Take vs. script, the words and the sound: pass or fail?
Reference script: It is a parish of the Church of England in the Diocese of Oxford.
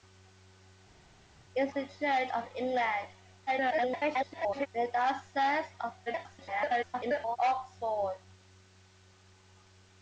fail